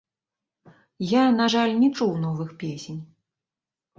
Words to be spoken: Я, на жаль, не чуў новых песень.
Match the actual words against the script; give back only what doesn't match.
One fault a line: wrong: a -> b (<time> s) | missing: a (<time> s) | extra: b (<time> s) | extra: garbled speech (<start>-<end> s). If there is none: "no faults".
no faults